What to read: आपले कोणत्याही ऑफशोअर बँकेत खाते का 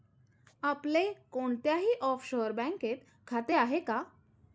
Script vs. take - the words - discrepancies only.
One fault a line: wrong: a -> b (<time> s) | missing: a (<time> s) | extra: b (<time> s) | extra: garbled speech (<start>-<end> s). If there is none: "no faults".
extra: आहे (3.5 s)